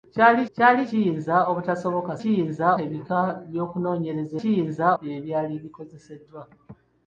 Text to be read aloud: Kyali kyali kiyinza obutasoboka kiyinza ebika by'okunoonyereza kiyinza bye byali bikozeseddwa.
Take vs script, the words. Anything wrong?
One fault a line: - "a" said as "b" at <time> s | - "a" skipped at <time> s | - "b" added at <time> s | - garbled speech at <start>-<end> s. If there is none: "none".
none